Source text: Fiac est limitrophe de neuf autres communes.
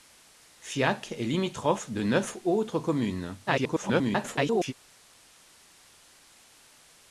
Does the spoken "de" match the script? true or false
true